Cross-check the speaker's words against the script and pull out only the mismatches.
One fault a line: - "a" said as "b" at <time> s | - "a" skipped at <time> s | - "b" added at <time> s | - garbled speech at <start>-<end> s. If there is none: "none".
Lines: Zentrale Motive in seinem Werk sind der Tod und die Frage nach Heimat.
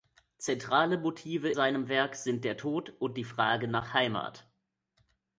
- "in" skipped at 1.5 s